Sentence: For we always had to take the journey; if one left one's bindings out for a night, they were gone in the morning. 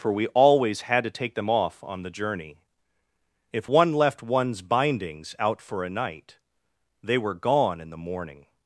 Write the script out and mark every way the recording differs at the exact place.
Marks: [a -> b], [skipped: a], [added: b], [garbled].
For we always had to take [added: them off on] the journey; if one left one's bindings out for a night, they were gone in the morning.